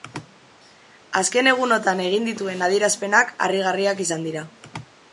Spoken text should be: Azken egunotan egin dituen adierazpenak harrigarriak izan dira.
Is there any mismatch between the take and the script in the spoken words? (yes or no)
no